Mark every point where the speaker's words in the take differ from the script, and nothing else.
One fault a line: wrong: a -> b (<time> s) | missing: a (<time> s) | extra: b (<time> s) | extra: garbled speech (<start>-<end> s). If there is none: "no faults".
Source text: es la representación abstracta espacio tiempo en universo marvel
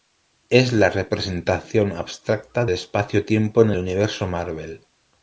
no faults